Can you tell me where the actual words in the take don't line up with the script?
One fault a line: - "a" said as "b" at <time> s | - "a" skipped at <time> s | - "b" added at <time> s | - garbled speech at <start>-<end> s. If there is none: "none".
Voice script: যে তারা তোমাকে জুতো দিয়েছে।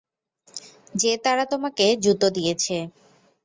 none